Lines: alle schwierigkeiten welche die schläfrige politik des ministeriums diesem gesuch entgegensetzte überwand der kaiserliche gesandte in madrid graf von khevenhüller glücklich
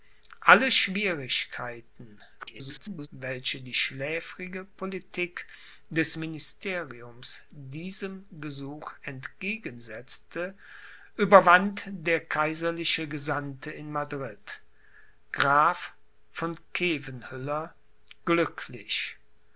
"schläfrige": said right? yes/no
yes